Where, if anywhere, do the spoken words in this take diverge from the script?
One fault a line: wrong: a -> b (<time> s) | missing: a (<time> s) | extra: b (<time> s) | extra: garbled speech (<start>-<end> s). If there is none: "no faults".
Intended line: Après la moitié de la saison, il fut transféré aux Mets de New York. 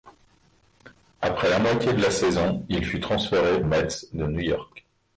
missing: aux (3.6 s)